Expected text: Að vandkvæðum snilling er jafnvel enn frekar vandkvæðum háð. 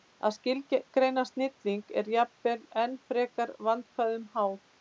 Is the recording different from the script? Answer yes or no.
yes